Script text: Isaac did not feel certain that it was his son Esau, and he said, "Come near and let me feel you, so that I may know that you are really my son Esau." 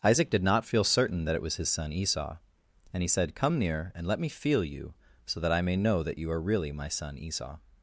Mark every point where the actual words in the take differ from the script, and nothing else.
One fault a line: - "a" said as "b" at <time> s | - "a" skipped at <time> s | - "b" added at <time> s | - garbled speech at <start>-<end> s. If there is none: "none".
none